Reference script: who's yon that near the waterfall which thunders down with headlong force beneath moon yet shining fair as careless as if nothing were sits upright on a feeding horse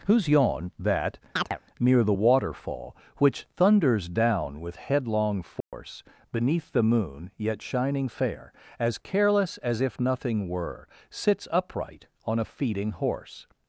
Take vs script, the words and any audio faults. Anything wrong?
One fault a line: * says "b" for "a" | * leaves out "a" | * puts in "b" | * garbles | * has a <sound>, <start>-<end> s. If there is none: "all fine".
* has a chirp, 1.4-1.6 s
* has a dropout, 5.6-5.7 s
* puts in "the"